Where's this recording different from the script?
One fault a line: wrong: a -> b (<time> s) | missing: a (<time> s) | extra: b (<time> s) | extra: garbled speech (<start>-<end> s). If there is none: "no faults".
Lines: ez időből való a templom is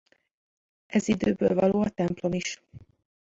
no faults